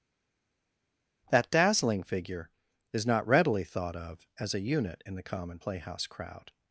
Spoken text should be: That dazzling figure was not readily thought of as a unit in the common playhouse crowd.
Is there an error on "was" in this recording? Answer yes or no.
yes